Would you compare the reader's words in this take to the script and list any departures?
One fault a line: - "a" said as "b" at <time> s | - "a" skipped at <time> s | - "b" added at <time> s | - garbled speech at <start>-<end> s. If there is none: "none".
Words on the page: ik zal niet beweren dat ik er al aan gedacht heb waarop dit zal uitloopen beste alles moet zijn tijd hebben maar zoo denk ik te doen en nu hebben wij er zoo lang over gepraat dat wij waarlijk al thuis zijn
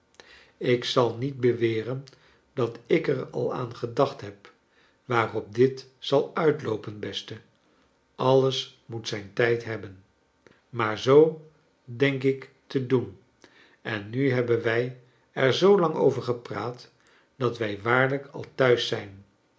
none